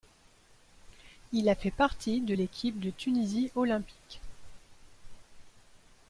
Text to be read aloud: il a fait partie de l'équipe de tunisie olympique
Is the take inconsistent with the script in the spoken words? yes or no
no